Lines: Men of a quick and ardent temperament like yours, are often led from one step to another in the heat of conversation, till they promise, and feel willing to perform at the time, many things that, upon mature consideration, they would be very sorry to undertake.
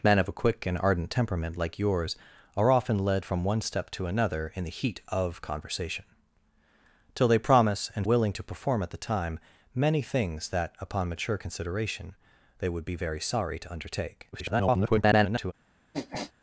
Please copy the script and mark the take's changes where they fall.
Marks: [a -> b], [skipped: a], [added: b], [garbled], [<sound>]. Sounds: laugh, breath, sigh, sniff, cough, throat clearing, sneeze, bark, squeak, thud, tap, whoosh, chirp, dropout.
Men of a quick and ardent temperament like yours, are often led from one step to another in the heat of conversation, till they promise, and [skipped: feel] willing to perform at the time, many things that, upon mature consideration, they would be very sorry to undertake. [garbled] [sniff]